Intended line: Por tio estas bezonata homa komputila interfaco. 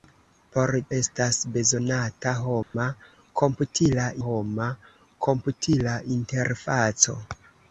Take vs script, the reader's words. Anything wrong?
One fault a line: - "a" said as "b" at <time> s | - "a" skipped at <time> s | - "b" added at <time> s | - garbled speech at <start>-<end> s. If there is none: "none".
- "tio" skipped at 0.7 s
- "homa komputila" added at 4.3 s